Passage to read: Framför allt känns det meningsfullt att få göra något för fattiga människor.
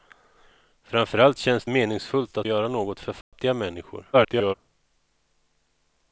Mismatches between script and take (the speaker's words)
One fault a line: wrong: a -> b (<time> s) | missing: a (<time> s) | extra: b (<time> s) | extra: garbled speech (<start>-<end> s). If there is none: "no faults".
missing: det (1.7 s)
missing: få (2.5 s)
extra: garbled speech (4.1-4.5 s)